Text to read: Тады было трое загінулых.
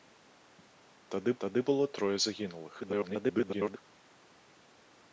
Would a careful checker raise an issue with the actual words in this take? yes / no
yes